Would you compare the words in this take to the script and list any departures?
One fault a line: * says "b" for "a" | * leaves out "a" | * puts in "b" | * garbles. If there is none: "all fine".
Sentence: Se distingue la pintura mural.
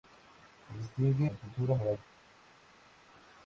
all fine